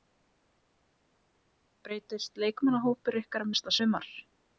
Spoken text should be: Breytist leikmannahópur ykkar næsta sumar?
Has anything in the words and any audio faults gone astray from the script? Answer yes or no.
no